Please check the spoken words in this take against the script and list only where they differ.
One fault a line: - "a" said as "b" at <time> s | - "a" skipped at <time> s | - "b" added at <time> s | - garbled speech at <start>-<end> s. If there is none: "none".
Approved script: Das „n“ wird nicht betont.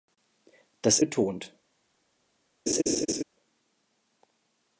- "n wird nicht" skipped at 1.0 s